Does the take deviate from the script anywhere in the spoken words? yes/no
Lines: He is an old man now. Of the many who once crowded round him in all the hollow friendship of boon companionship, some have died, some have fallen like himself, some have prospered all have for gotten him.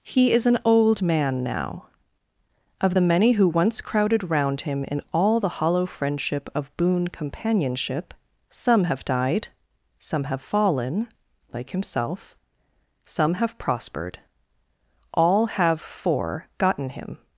no